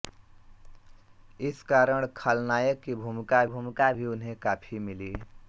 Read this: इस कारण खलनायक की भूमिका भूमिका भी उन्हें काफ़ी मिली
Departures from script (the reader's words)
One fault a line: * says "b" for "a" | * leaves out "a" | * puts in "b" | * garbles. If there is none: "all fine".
all fine